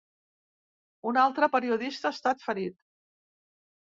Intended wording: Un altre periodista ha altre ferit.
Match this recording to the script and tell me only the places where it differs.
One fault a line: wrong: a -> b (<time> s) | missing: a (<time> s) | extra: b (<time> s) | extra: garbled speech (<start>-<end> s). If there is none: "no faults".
wrong: altre -> estat (2.2 s)